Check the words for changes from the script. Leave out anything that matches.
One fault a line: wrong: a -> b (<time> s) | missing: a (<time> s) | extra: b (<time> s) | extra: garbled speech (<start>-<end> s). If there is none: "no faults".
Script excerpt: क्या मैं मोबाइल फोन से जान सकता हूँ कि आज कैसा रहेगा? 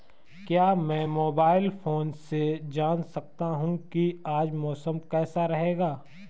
extra: मौसम (4.5 s)